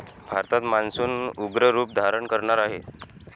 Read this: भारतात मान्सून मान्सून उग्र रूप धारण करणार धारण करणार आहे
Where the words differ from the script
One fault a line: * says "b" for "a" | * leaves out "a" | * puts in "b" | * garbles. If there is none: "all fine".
* leaves out "मान्सून"
* leaves out "धारण करणार"